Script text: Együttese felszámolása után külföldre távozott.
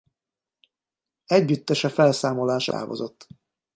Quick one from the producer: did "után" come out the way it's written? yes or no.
no